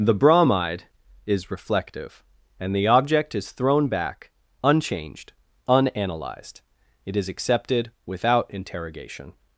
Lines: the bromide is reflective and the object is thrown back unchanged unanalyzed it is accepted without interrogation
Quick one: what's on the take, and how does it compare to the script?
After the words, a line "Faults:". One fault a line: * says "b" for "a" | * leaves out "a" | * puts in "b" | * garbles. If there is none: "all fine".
the bromide is reflective and the object is thrown back unchanged unanalyzed it is accepted without interrogation
Faults:
all fine